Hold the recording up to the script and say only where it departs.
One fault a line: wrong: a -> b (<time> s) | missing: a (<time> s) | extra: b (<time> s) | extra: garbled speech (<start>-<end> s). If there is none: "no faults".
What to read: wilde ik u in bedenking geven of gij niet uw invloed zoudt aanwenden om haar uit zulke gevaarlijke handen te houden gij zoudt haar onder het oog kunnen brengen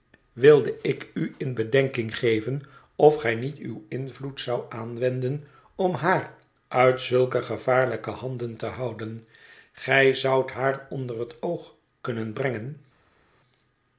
no faults